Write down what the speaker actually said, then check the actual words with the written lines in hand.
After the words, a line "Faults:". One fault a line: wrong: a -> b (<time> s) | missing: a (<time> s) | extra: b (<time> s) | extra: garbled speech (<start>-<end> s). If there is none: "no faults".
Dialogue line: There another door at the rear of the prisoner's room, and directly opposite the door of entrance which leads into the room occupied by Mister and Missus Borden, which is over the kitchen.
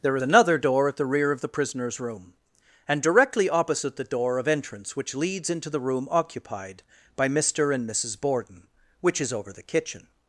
There another door at the rear of the prisoner's room, and directly opposite the door of entrance which leads into the room occupied by Mister and Missus Borden, which is over the kitchen.
Faults:
no faults